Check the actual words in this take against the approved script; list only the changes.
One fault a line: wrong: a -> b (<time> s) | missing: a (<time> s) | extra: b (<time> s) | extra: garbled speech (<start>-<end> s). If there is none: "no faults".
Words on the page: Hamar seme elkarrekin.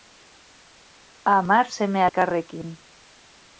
no faults